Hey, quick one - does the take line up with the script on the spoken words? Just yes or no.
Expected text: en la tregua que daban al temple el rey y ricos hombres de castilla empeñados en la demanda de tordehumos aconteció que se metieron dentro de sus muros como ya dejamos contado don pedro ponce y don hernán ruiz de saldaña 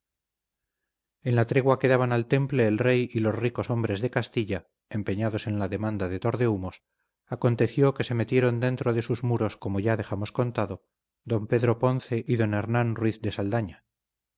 no